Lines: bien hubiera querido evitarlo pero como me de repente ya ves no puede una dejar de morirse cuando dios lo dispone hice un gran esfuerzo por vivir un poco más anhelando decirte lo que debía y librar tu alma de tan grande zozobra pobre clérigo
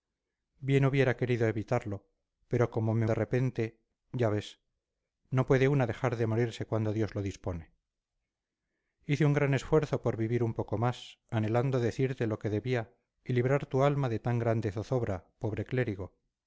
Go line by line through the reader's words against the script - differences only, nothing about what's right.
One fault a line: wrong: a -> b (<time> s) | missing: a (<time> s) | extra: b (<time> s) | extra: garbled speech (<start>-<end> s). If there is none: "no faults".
no faults